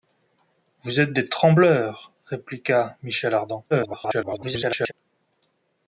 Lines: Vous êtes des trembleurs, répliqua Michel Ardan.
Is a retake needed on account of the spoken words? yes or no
yes